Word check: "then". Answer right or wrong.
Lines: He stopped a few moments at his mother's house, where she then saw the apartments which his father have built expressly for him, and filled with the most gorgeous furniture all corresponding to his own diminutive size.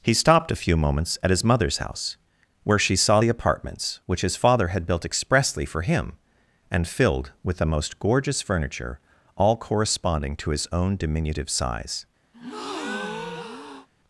wrong